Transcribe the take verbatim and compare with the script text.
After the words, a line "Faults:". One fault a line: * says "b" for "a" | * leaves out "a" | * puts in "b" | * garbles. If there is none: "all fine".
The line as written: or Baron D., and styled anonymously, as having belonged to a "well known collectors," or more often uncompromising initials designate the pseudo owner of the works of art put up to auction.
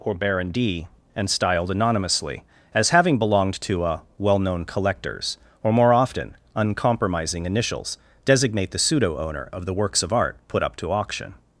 or Baron D., and styled anonymously, as having belonged to a "well known collectors," or more often uncompromising initials designate the pseudo owner of the works of art put up to auction.
Faults:
all fine